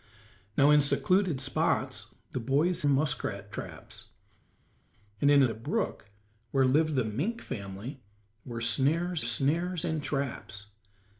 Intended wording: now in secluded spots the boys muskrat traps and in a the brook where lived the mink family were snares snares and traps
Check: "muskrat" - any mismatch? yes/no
no